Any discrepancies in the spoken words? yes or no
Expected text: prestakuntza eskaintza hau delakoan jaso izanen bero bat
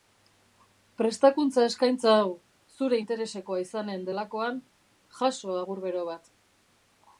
yes